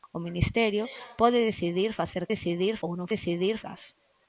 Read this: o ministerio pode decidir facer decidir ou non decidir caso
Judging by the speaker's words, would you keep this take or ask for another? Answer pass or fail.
pass